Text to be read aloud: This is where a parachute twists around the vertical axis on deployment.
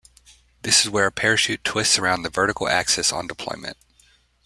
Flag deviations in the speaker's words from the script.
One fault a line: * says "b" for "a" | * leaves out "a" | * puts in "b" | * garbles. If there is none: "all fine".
all fine